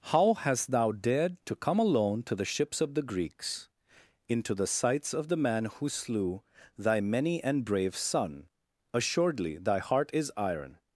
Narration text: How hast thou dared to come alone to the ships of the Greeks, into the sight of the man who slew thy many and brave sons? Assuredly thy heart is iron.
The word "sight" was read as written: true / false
false